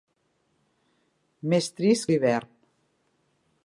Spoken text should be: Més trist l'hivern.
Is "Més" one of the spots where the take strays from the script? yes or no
no